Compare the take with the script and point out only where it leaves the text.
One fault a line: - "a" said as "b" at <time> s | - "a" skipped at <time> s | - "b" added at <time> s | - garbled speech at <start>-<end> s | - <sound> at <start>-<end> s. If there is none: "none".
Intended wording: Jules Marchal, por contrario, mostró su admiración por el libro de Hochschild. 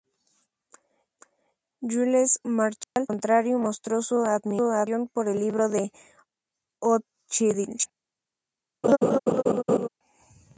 - dropout at 2.8-3.0 s
- laugh at 8.8-9.9 s